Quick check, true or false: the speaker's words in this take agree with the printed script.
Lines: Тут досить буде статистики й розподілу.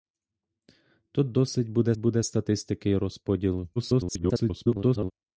false